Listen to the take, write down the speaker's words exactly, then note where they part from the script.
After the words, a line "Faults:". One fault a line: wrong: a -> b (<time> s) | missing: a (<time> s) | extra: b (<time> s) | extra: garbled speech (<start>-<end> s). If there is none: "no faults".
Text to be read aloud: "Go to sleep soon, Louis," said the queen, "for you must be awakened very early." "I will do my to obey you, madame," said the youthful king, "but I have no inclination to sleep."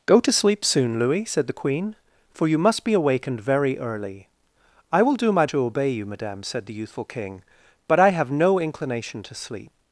"Go to sleep soon, Louis," said the queen, "for you must be awakened very early." "I will do my to obey you, madame," said the youthful king, "but I have no inclination to sleep."
Faults:
no faults